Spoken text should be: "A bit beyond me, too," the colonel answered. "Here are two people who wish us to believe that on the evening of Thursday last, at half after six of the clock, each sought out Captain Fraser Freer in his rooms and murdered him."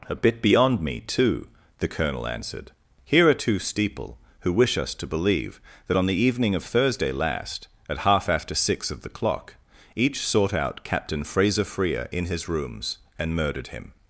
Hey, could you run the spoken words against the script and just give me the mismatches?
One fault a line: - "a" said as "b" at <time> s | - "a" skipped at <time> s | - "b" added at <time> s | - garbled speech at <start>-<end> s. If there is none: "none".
- "people" said as "steeple" at 3.6 s